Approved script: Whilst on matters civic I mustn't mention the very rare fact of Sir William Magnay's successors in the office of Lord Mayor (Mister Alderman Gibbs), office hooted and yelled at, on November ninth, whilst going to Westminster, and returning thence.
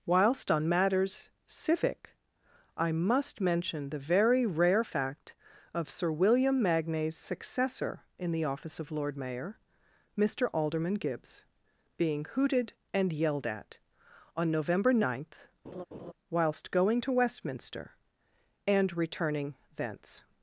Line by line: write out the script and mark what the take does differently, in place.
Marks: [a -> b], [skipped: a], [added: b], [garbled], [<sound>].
Whilst on matters civic I [mustn't -> must] mention the very rare fact of Sir William Magnay's [successors -> successor] in the office of Lord Mayor (Mister Alderman Gibbs), [office -> being] hooted and yelled at, on November ninth, [laugh] whilst going to Westminster, and returning thence.